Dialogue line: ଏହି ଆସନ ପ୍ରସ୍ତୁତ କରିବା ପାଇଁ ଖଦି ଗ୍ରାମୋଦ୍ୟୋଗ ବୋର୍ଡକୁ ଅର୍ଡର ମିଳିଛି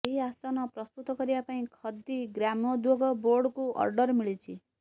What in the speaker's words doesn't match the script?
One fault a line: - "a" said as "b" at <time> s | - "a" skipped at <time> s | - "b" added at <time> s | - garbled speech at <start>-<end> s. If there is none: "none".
none